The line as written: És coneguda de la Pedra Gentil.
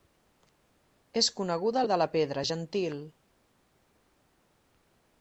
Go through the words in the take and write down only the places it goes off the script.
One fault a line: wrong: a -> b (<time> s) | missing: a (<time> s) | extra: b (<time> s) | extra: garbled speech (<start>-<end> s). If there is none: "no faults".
no faults